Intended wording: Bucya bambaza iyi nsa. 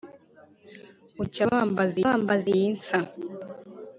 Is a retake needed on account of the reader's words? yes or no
yes